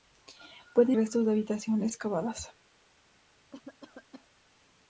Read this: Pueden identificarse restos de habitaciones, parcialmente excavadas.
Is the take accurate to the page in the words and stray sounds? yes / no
no